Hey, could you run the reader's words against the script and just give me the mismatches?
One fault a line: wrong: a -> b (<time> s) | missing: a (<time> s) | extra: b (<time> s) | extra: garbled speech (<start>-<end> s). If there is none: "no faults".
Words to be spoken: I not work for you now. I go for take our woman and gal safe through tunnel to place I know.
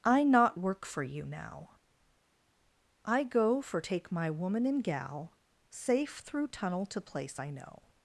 wrong: our -> my (4.1 s)